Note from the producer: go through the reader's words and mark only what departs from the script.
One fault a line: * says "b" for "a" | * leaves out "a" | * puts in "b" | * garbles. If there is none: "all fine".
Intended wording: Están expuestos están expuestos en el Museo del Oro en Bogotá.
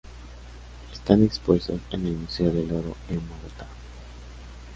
* leaves out "están expuestos"